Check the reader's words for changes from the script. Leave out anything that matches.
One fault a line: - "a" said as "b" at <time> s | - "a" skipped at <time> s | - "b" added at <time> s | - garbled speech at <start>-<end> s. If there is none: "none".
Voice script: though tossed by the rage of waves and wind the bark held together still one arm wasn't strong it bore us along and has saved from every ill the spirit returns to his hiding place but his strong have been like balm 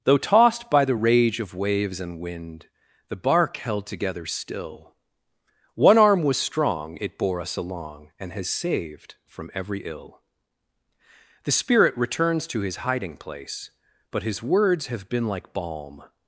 - "wasn't" said as "was" at 6.2 s
- "strong" said as "words" at 14.4 s